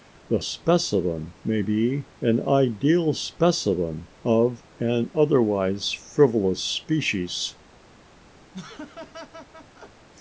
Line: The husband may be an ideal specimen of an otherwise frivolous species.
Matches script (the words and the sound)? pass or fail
fail